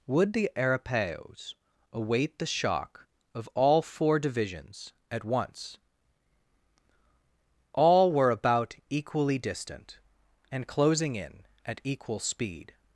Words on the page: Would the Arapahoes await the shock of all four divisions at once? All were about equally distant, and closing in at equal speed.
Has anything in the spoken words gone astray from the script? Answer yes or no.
no